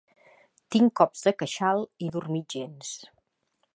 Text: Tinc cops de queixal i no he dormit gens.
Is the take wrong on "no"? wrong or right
wrong